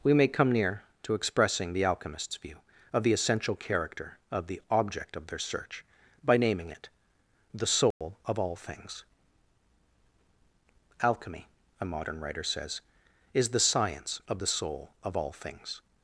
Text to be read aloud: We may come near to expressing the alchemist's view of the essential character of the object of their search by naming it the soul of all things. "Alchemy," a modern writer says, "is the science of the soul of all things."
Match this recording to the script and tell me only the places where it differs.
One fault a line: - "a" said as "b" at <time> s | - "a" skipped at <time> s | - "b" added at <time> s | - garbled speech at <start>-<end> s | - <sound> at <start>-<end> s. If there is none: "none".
- dropout at 7.9-8.0 s